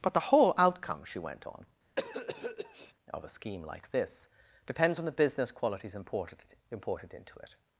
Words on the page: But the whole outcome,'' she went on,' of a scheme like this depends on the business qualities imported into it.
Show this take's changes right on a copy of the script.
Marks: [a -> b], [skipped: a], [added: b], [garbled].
But the whole outcome,'' she went on,' of a scheme like this depends on the business qualities imported [added: imported] into it.